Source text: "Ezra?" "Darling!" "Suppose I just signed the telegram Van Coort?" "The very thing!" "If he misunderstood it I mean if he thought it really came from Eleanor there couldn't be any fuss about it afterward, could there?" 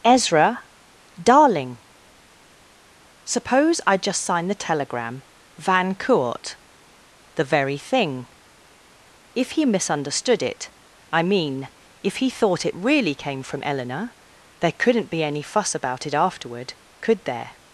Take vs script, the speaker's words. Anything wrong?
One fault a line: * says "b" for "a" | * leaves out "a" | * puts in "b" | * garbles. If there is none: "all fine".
all fine